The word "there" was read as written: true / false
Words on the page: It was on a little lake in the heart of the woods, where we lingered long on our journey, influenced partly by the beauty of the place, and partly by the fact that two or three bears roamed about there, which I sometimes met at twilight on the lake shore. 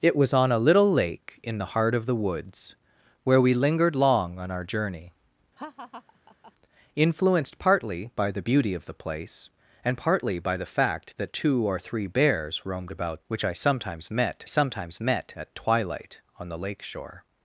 false